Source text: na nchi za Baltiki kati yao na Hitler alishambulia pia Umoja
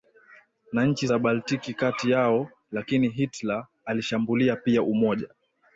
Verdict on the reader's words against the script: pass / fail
fail